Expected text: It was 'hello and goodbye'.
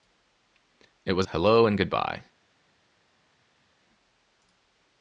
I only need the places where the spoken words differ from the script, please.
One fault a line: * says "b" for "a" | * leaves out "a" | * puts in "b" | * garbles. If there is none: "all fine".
all fine